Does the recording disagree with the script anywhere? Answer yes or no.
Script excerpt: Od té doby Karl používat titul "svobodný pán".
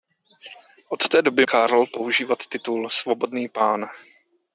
no